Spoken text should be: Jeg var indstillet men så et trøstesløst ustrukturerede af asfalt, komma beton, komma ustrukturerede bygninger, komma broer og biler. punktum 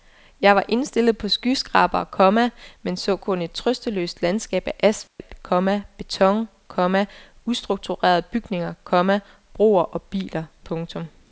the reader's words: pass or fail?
fail